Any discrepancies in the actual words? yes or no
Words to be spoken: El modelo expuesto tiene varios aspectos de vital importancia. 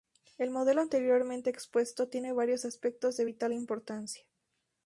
yes